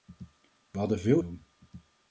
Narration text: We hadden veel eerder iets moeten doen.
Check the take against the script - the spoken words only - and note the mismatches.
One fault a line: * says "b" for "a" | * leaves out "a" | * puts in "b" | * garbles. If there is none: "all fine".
* leaves out "eerder iets moeten"